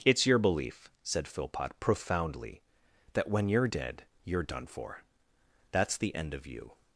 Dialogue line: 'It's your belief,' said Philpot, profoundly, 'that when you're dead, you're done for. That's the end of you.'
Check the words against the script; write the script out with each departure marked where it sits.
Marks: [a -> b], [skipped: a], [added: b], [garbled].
'It's your belief,' said Philpot, profoundly, 'that when you're dead, you're done for. That's the end of you.'